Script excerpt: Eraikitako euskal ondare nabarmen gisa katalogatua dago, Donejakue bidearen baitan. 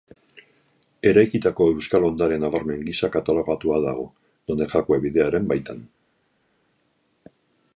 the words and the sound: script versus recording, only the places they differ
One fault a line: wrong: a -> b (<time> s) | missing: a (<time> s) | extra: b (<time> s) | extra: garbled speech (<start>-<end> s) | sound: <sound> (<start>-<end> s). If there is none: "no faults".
no faults